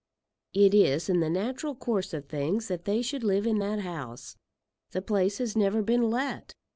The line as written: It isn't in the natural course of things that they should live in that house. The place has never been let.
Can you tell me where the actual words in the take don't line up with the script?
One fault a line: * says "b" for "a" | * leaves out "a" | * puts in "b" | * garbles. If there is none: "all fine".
* says "is" for "isn't"